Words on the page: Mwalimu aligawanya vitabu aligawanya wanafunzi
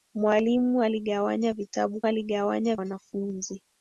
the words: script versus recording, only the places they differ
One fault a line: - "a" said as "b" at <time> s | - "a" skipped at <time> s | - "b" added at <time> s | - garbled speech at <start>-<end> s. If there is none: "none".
none